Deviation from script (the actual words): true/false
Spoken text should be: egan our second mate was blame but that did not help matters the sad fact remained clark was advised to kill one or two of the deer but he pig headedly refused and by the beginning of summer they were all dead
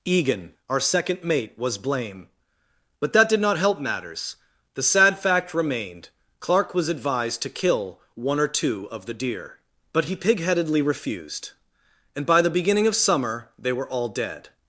false